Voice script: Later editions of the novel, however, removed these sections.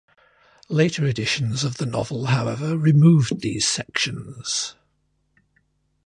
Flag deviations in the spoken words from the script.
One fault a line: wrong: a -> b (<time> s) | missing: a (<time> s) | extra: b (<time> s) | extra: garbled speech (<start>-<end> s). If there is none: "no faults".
no faults